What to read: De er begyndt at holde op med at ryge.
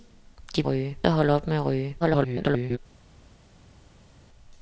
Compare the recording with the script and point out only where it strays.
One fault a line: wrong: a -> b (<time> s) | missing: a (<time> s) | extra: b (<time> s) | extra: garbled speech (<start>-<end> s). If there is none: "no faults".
wrong: begyndt -> ryge (0.6 s)
extra: garbled speech (2.0-2.8 s)